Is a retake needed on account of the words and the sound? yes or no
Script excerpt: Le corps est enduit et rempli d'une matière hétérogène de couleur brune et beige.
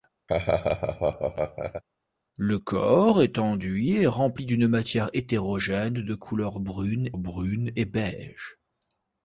yes